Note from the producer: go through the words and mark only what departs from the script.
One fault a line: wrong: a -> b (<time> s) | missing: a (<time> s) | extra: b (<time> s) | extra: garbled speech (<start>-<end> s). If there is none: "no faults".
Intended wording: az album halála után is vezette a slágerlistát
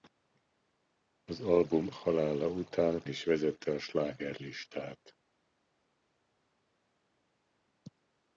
no faults